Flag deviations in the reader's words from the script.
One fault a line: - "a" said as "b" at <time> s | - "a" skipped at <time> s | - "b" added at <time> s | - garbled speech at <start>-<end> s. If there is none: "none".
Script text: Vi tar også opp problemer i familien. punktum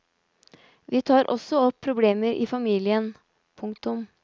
none